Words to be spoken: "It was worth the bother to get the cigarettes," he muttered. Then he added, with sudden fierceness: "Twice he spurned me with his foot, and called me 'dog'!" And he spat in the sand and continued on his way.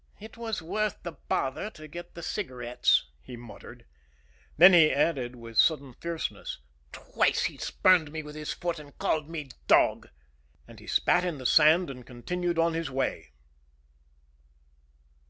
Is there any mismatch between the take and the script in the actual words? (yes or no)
no